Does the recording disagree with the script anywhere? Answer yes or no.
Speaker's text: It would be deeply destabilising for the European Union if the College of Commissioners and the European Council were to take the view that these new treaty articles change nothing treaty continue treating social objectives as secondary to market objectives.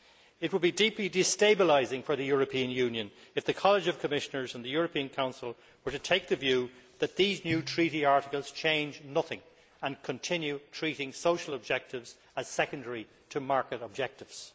yes